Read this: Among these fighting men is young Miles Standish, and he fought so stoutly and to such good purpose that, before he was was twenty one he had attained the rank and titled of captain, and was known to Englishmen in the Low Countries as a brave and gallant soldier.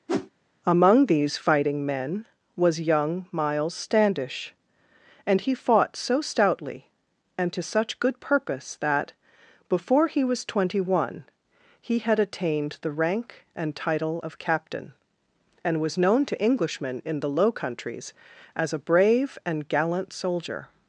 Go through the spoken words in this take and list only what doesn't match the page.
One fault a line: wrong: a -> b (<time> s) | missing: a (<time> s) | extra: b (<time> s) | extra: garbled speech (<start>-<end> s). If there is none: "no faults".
wrong: is -> was (2.5 s)
missing: was (10.4 s)
wrong: titled -> title (13.7 s)